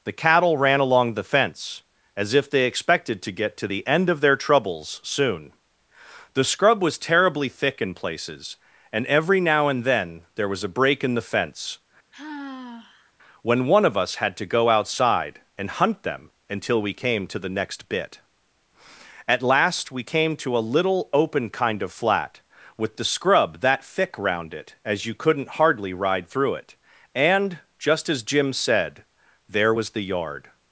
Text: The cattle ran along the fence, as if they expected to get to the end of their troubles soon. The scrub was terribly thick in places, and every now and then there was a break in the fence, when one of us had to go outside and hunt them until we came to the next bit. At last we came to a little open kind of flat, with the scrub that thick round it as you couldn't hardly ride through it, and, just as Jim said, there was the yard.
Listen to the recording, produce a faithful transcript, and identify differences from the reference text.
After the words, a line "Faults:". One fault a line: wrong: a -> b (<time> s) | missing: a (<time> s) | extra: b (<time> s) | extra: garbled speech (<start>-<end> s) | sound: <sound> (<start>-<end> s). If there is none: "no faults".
The cattle ran along the fence, as if they expected to get to the end of their troubles soon. The scrub was terribly thick in places, and every now and then there was a break in the fence, when one of us had to go outside and hunt them until we came to the next bit. At last we came to a little open kind of flat, with the scrub that thick round it as you couldn't hardly ride through it, and, just as Jim said, there was the yard.
Faults:
sound: sigh (12.1-13.1 s)